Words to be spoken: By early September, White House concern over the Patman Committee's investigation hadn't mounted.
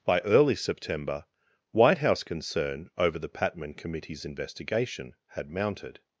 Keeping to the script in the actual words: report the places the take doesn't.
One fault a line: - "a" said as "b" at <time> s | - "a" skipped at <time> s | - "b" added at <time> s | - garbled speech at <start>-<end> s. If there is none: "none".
- "hadn't" said as "had" at 5.3 s